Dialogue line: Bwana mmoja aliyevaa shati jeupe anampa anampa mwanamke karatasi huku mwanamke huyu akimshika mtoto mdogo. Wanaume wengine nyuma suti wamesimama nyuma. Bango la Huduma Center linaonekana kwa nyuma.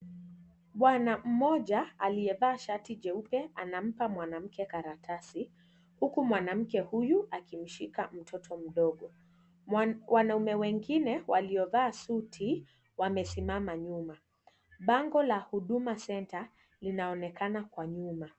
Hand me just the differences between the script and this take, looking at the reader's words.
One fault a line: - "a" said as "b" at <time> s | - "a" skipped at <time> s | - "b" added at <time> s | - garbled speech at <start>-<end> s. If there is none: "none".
- "anampa" skipped at 4.1 s
- "nyuma" said as "waliovaa" at 11.3 s